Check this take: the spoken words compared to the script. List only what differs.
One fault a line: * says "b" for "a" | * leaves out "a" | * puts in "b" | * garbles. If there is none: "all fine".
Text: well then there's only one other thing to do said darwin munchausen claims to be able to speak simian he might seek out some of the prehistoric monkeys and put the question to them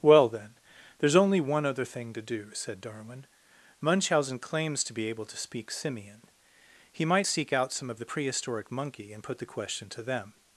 * says "monkey" for "monkeys"